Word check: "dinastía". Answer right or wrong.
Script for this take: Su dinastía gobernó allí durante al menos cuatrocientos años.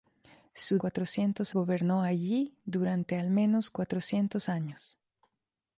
wrong